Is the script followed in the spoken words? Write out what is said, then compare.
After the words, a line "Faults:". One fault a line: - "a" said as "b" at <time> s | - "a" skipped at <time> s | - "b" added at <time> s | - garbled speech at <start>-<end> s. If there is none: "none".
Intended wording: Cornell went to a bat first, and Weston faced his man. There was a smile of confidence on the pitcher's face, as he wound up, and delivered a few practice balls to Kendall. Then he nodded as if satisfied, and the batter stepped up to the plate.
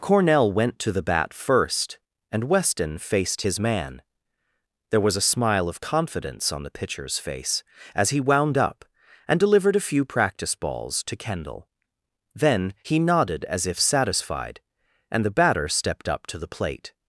Cornell went to the bat first, and Weston faced his man. There was a smile of confidence on the pitcher's face, as he wound up, and delivered a few practice balls to Kendall. Then he nodded as if satisfied, and the batter stepped up to the plate.
Faults:
- "a" said as "the" at 0.9 s